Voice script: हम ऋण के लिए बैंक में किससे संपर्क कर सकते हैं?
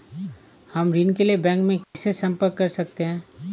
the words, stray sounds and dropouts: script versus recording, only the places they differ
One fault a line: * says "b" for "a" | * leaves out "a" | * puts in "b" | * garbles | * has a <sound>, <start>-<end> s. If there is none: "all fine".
* has a dropout, 1.8-1.9 s